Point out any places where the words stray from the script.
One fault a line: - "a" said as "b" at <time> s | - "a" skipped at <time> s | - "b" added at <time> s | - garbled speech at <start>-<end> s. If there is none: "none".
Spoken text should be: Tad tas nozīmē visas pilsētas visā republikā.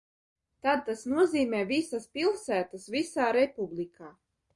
none